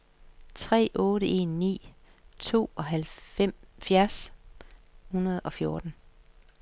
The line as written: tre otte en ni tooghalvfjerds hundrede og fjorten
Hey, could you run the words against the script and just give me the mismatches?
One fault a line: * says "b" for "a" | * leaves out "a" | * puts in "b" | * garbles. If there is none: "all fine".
all fine